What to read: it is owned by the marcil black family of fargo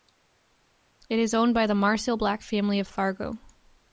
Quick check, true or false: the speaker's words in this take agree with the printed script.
true